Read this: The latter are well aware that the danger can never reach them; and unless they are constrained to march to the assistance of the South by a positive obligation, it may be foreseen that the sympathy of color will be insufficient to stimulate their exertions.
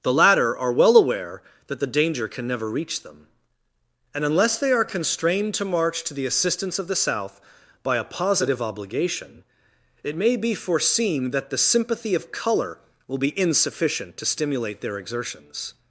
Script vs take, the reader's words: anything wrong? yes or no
no